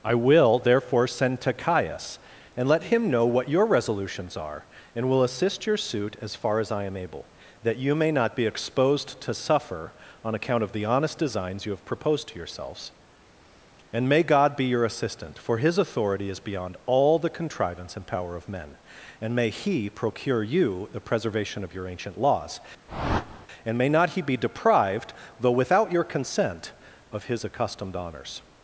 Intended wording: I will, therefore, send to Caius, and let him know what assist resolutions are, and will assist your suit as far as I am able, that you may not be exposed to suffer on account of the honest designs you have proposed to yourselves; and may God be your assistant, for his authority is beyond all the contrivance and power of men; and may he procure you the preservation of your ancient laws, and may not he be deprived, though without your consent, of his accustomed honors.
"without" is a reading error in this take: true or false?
false